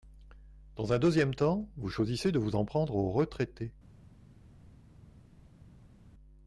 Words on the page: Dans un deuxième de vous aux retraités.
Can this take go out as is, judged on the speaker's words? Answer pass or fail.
fail